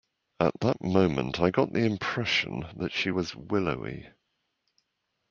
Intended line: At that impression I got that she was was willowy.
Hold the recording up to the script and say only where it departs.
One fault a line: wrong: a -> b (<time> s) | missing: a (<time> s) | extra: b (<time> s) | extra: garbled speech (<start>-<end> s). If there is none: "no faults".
wrong: impression -> moment (0.8 s)
extra: the impression (1.7 s)
missing: was (3.3 s)